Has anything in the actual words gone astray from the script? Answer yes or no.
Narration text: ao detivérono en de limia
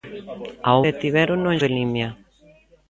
no